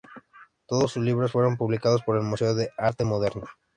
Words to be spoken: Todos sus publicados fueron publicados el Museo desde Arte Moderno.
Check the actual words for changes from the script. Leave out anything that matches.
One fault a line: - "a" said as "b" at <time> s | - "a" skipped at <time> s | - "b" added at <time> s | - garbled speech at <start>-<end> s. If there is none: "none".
- "publicados" said as "libros" at 1.0 s
- "por" added at 2.0 s
- "desde" said as "de" at 2.5 s